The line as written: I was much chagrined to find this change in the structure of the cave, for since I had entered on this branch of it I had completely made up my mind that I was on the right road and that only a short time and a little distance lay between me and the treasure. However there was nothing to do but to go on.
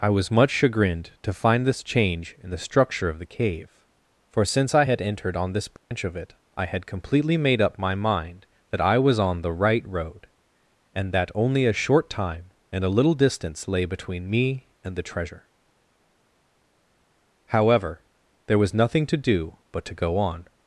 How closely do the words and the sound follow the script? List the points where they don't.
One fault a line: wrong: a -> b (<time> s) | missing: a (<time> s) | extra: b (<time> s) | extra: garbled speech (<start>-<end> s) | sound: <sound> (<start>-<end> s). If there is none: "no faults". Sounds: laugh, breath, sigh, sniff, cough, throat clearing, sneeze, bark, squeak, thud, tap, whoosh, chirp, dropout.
sound: dropout (5.8-5.9 s)